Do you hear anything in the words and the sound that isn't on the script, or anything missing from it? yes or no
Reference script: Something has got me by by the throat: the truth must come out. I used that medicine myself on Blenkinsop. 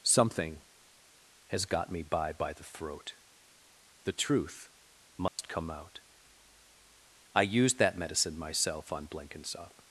yes